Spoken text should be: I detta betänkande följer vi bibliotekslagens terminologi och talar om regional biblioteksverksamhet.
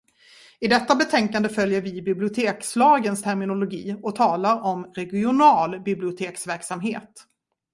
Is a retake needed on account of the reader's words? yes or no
no